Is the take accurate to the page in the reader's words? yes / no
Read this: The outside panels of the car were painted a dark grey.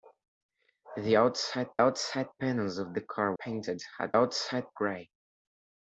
no